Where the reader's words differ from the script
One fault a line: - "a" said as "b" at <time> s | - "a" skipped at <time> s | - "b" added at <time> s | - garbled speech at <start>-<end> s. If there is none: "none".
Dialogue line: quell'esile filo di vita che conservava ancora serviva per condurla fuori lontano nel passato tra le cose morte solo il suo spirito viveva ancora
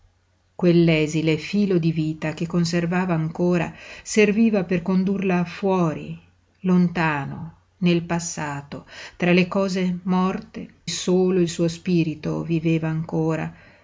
none